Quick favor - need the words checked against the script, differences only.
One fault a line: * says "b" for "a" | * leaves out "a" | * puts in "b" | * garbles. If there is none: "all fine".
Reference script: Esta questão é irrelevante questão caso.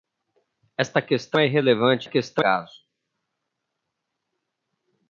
all fine